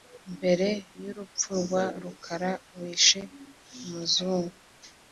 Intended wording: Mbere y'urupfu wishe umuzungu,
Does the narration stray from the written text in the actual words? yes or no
yes